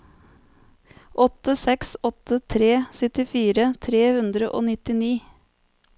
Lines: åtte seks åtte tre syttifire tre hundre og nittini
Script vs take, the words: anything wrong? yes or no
no